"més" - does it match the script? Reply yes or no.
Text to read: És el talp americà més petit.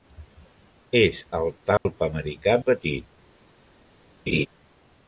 no